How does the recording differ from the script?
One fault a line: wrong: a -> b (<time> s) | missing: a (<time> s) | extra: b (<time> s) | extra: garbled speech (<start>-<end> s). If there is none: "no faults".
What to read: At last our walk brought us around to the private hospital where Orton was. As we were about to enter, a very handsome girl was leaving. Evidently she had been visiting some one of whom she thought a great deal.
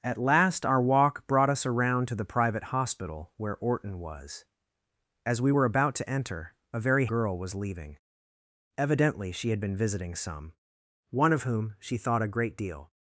missing: handsome (7.1 s)